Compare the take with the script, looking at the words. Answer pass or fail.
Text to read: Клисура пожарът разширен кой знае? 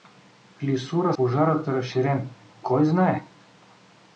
pass